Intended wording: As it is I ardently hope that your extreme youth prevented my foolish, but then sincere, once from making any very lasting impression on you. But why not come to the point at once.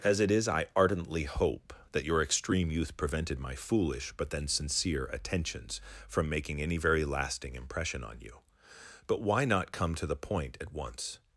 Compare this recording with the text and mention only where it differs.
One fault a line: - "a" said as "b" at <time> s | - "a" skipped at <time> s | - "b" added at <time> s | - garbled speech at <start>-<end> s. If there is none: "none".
- "once" said as "attentions" at 5.1 s